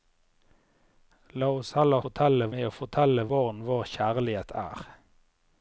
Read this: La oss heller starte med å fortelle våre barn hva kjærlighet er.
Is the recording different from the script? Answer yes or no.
yes